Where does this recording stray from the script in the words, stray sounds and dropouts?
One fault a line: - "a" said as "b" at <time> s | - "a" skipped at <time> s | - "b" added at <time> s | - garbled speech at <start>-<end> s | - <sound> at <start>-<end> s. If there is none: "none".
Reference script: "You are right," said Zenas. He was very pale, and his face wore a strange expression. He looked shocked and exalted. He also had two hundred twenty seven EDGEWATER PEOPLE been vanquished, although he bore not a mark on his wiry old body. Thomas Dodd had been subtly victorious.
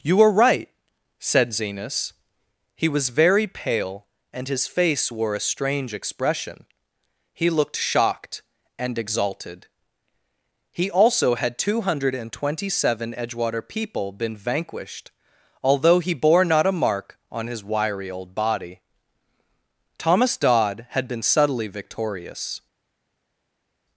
none